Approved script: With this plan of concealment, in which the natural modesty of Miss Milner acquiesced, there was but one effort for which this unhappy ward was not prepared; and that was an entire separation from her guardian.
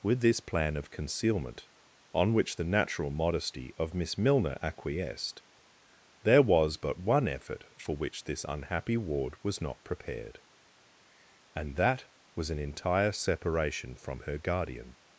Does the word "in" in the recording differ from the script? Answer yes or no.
yes